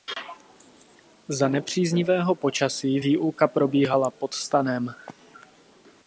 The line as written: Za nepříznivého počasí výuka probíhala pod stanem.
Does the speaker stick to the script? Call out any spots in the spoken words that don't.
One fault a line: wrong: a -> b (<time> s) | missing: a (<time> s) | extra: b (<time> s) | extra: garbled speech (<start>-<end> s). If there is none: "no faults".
no faults